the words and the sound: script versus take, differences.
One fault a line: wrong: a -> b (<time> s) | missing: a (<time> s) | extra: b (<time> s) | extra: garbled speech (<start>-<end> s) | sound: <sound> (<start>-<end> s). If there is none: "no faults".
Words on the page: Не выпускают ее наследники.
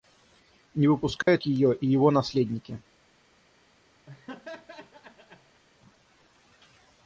sound: dropout (1.2-1.3 s)
extra: и его (1.7 s)
sound: laugh (4.1-5.6 s)